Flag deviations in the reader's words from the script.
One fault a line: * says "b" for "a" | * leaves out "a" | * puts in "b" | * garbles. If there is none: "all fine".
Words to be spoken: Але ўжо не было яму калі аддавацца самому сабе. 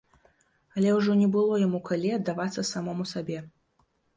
all fine